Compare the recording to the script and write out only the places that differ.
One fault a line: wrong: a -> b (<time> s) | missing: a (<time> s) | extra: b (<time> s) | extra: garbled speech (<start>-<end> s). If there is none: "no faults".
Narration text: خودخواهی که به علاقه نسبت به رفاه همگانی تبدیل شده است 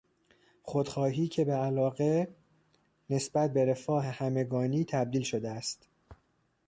no faults